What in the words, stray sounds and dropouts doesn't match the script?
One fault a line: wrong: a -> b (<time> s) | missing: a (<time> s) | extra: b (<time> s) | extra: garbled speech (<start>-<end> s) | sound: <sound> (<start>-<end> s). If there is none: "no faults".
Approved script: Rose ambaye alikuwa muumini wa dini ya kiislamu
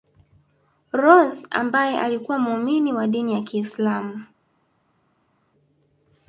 no faults